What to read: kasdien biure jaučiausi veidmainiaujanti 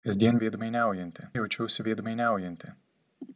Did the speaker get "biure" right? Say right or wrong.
wrong